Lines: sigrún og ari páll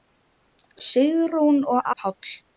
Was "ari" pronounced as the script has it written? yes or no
no